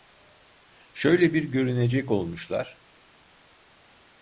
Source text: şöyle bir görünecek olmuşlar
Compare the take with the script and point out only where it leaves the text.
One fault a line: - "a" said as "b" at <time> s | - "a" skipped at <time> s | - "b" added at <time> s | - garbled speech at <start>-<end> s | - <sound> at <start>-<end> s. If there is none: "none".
none